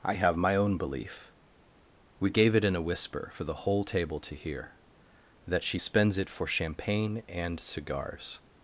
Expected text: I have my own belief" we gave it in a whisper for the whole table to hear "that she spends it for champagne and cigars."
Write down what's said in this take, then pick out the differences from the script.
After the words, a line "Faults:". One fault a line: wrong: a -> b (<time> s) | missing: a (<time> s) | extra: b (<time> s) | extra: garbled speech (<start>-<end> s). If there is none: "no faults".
I have my own belief" we gave it in a whisper for the whole table to hear "that she spends it for champagne and cigars."
Faults:
no faults